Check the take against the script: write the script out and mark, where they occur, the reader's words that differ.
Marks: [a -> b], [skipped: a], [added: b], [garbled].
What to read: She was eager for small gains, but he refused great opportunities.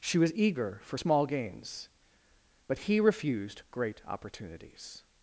She was eager for small gains, but he refused great opportunities.